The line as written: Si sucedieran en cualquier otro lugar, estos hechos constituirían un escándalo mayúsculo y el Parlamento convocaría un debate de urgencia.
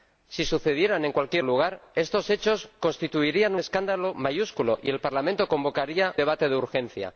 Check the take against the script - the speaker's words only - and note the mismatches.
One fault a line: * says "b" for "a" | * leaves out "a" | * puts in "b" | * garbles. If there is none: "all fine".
* leaves out "otro"
* leaves out "un"
* leaves out "un"